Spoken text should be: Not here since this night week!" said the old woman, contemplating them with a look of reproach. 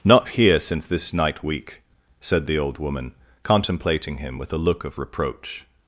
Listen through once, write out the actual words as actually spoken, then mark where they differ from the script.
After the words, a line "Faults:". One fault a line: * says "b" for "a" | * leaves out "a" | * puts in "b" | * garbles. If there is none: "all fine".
Not here since this night week!" said the old woman, contemplating him with a look of reproach.
Faults:
* says "him" for "them"